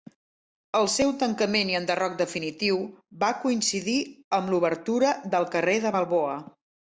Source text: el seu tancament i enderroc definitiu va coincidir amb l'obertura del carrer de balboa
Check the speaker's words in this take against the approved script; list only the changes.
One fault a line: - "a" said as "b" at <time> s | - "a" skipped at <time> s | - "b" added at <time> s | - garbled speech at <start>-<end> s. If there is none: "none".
none